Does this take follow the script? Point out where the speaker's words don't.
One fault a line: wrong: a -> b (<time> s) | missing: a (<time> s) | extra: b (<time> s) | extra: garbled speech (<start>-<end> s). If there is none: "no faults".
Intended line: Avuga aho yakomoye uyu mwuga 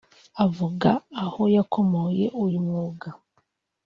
no faults